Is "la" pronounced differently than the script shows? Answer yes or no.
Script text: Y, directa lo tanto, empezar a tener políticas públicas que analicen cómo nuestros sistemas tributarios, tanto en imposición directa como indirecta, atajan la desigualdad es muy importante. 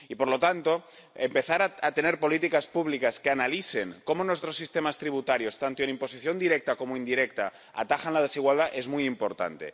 no